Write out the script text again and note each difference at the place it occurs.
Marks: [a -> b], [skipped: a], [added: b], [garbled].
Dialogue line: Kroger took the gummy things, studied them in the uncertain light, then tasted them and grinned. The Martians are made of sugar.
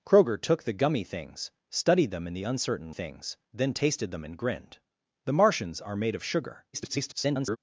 Kroger took the gummy things, studied them in the uncertain [light, -> things] then tasted them and grinned. The Martians are made of sugar. [garbled]